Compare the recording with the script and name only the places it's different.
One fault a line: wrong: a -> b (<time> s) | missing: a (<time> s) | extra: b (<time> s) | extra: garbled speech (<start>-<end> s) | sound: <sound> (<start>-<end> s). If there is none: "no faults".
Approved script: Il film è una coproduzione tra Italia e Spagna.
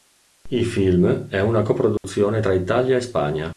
sound: dropout (2.0-2.0 s)